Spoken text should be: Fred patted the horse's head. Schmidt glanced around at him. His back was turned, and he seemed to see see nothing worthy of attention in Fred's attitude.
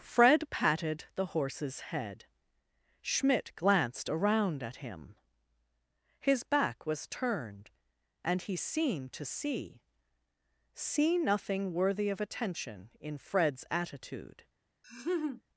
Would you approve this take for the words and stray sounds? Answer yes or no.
no